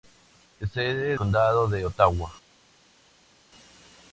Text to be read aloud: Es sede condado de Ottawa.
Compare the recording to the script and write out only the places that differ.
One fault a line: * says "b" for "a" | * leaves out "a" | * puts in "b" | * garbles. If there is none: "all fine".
all fine